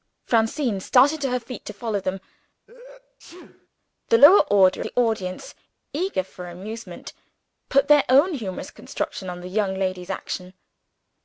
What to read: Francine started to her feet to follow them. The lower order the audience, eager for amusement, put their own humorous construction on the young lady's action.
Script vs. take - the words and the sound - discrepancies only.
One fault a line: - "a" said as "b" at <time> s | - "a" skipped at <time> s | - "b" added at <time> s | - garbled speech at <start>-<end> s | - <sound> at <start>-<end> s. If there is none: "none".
- sneeze at 2.7-3.7 s